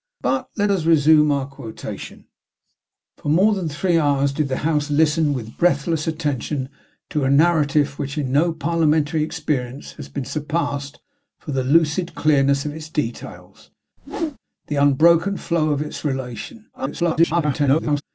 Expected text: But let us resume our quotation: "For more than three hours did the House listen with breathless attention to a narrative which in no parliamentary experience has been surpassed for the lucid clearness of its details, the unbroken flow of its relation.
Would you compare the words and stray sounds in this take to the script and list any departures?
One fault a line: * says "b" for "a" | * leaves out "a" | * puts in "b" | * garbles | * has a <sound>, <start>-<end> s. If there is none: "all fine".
* has a whoosh, 14.0-14.4 s
* garbles